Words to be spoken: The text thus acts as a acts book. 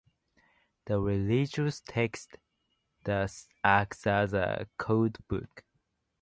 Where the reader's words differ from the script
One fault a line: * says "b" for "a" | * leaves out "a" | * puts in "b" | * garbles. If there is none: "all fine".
* puts in "religious"
* says "code" for "acts"